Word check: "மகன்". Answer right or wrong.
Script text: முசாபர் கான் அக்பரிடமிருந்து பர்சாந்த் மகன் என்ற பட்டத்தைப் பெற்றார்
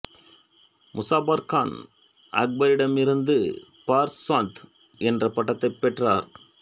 wrong